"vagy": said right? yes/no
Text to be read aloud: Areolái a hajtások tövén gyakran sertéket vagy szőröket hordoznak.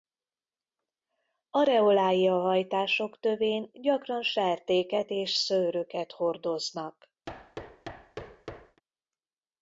no